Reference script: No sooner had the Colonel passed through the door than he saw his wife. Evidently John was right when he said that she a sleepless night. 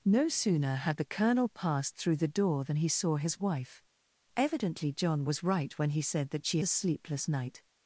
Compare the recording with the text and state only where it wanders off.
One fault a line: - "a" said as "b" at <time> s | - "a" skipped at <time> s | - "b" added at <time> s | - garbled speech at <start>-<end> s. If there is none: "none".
none